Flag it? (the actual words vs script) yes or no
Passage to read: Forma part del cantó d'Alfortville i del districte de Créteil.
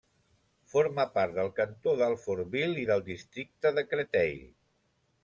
no